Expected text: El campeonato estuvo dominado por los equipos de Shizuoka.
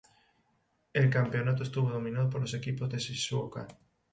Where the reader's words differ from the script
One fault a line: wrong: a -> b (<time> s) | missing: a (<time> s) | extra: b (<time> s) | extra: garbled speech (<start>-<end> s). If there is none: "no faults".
no faults